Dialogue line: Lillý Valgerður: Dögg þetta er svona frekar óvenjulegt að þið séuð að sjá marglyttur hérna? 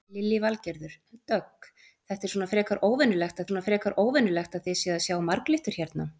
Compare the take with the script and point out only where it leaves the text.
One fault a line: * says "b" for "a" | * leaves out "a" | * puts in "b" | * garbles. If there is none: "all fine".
* puts in "svona frekar óvenjulegt"